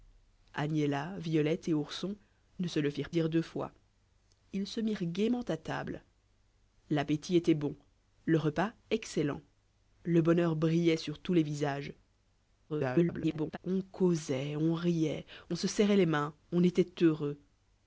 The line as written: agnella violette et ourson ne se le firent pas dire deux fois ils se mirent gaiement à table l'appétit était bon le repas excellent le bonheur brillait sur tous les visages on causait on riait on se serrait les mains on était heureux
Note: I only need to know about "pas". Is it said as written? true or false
false